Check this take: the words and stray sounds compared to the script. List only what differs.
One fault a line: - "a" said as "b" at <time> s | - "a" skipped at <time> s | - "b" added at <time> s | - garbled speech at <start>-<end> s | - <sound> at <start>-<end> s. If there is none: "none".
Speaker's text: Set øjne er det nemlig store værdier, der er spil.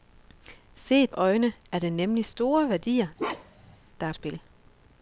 - bark at 3.2-3.8 s